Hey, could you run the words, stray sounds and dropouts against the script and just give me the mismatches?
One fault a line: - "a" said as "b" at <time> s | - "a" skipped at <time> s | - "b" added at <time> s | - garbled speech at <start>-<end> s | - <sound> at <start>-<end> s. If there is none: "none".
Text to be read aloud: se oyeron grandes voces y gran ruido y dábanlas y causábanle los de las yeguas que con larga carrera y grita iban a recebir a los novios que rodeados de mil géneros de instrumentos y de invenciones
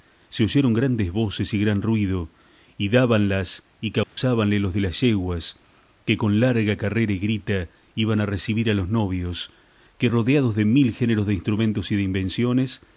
- dropout at 4.0-4.2 s